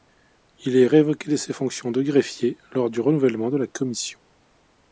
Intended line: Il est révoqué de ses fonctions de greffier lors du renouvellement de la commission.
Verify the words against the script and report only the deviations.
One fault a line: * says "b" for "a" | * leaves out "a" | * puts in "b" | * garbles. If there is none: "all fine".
all fine